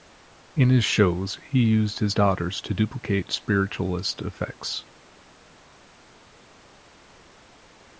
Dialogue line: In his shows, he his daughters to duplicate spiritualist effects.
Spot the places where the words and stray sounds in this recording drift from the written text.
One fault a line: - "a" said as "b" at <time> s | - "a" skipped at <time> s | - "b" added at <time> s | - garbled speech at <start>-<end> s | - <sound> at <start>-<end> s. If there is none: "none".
- "used" added at 1.6 s